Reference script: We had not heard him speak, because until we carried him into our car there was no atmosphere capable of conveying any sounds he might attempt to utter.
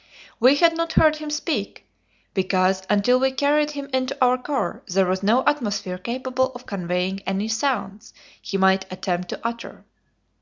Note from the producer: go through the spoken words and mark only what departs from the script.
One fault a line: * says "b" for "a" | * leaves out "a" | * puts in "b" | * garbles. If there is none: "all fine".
all fine